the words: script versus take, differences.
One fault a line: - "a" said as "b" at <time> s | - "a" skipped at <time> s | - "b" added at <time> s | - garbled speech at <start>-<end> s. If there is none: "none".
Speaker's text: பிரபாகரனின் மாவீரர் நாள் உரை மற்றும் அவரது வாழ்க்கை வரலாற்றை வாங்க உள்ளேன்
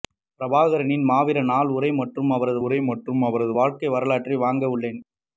- "உரை மற்றும் அவரது" added at 2.6 s